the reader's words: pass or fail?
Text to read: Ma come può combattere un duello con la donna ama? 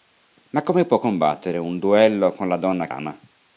pass